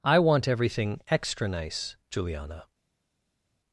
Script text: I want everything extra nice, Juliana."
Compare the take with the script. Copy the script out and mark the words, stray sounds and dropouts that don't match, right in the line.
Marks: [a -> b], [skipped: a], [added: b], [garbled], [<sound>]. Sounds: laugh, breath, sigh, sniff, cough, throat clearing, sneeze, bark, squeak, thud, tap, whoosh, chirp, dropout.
I want everything extra nice, Juliana."